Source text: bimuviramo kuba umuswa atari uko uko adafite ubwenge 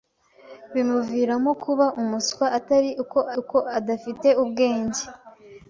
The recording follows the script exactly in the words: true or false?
true